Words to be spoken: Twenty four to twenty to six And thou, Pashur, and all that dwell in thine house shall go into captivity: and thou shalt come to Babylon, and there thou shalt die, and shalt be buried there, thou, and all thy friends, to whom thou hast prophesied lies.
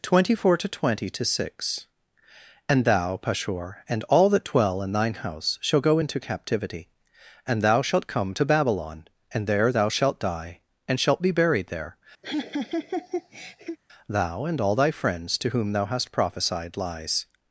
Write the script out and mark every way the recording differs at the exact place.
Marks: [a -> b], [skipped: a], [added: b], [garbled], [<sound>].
Twenty four to twenty to six And thou, Pashur, and all that dwell in thine house shall go into captivity: and thou shalt come to Babylon, and there thou shalt die, and shalt be buried there, [laugh] thou, and all thy friends, to whom thou hast prophesied lies.